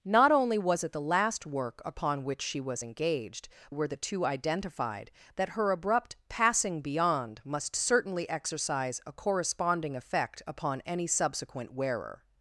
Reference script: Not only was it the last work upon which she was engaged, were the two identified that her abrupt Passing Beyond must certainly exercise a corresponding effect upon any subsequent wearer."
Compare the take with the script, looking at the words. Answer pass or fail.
pass